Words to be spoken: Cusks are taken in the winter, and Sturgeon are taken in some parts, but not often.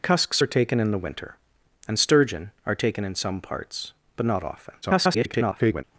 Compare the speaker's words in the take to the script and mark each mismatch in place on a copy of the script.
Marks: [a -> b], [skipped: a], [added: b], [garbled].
Cusks are taken in the winter, and Sturgeon are taken in some parts, but not often. [garbled]